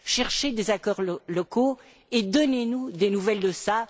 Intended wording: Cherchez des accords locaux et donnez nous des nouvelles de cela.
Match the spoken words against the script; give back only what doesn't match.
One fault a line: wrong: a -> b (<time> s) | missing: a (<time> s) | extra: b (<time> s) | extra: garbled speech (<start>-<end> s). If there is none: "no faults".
no faults